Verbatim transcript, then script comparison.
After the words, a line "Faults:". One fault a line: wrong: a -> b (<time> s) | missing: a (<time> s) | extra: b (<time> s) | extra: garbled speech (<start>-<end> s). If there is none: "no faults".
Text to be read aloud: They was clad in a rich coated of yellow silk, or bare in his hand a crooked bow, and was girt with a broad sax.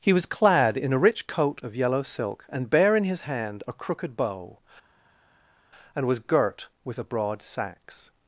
He was clad in a rich coat of yellow silk, and bare in his hand a crooked bow, and was girt with a broad sax.
Faults:
wrong: They -> He (0.0 s)
wrong: coated -> coat (1.3 s)
wrong: or -> and (2.5 s)